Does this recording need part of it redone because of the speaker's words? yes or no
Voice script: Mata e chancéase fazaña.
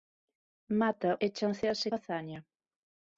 no